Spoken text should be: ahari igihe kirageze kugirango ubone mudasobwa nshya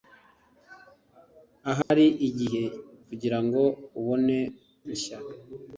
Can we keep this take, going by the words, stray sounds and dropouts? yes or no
no